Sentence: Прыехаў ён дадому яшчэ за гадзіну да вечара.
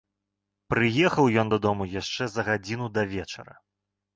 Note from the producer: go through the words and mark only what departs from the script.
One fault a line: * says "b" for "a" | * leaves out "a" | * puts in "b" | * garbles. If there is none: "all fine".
all fine